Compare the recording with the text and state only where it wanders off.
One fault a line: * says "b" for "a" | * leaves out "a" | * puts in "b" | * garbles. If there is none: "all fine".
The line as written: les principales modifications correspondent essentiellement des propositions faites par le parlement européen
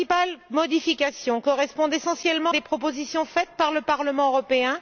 all fine